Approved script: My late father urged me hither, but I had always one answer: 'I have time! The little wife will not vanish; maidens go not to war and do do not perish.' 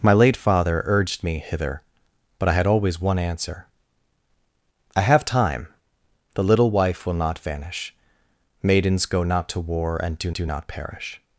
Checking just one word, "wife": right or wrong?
right